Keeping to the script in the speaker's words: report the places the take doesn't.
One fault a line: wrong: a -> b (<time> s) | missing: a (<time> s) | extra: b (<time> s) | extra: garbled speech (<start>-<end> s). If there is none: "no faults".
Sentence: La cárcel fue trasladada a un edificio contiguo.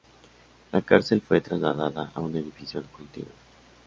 no faults